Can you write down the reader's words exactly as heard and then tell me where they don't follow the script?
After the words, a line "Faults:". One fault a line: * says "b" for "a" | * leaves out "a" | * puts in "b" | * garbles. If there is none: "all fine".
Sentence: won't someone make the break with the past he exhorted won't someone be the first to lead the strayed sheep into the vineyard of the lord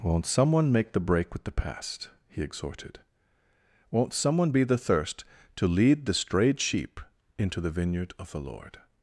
won't someone make the break with the past he exhorted won't someone be the thirst to lead the strayed sheep into the vineyard of the lord
Faults:
* says "thirst" for "first"